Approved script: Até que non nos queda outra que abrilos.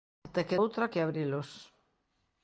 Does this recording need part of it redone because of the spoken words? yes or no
yes